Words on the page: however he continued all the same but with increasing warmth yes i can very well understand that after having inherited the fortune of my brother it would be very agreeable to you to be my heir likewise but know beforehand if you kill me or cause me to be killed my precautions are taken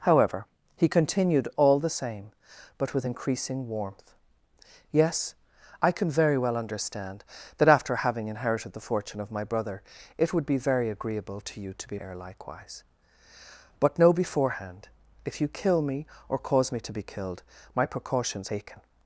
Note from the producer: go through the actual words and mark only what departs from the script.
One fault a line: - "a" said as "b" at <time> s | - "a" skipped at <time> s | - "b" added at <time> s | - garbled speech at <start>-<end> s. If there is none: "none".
- "my" skipped at 12.0 s
- "are" skipped at 18.5 s